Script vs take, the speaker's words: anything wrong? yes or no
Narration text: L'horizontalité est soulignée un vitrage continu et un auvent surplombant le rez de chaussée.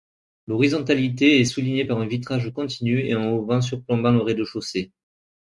yes